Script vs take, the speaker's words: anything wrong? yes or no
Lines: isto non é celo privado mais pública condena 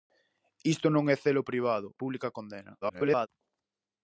yes